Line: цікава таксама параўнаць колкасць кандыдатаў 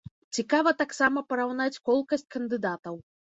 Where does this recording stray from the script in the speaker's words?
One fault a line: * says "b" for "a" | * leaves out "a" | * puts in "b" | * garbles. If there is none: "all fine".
all fine